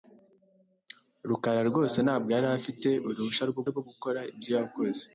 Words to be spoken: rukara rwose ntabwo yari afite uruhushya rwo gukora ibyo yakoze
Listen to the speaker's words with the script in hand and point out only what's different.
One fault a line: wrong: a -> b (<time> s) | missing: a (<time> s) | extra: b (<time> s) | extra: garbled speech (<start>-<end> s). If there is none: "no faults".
extra: rwo (3.7 s)